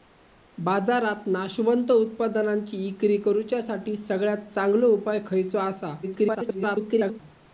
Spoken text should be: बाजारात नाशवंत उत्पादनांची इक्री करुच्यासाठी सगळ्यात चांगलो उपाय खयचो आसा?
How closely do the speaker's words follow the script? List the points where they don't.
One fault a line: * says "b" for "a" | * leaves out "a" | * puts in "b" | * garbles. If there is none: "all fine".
* garbles